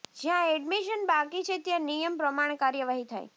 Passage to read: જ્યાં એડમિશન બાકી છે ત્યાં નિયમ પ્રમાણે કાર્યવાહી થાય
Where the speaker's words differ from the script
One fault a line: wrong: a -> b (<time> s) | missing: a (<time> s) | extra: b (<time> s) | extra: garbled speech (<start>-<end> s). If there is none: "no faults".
no faults